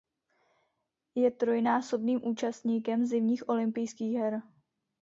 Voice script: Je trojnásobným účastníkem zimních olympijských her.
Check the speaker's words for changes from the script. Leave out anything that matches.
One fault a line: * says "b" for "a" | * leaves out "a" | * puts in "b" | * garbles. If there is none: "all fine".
all fine